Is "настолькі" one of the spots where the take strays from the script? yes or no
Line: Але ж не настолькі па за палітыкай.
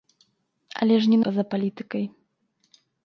yes